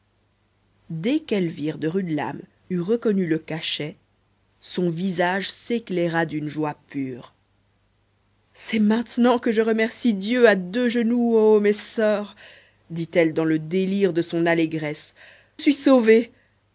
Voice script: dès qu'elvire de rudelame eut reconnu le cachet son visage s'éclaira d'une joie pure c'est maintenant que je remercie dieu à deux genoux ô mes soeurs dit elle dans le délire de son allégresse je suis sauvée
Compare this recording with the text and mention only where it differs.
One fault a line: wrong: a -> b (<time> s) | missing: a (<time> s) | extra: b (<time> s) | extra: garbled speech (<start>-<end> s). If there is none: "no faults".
missing: je (15.1 s)